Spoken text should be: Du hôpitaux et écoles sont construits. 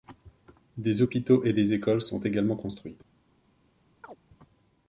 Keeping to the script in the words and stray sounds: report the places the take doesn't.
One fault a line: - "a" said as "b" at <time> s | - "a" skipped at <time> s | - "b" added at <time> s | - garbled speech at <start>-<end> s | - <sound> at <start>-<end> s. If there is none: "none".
- "Du" said as "Des" at 0.8 s
- "des" added at 1.5 s
- "également" added at 2.2 s
- chirp at 4.0-4.2 s